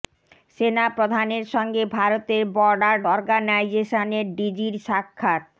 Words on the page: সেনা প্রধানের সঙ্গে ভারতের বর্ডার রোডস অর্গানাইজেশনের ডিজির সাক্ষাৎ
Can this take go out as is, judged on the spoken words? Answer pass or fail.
fail